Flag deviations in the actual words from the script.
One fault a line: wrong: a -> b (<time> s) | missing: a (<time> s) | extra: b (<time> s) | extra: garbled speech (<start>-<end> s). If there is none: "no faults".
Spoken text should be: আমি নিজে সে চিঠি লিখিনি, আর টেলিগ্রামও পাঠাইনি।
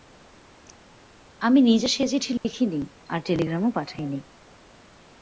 no faults